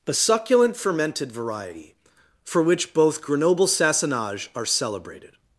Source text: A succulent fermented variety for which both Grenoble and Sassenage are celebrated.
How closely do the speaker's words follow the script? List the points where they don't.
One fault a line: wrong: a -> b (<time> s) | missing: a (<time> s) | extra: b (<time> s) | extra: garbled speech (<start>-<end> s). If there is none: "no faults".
missing: and (3.7 s)